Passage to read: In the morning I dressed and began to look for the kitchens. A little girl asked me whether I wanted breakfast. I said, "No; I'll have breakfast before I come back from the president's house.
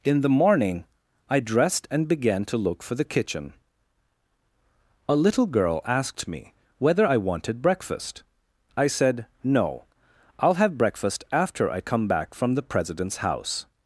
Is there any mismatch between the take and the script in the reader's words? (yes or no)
yes